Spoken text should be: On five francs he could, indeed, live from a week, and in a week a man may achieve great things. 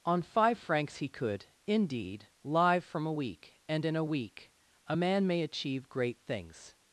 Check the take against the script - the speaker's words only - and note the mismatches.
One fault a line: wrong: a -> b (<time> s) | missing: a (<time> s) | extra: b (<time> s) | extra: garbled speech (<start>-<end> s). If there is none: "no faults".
no faults